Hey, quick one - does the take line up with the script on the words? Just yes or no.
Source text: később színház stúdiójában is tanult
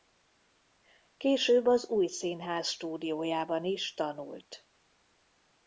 no